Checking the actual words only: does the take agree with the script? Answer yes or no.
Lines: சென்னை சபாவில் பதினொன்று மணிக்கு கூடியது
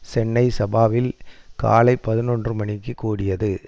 no